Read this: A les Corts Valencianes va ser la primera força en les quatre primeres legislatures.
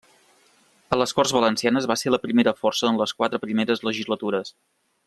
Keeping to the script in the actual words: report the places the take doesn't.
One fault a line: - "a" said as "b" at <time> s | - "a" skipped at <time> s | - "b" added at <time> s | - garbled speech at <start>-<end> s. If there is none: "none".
none